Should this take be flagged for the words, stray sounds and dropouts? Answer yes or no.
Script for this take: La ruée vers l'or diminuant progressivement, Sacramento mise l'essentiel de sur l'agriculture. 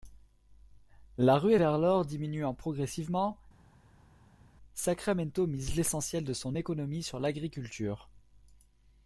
yes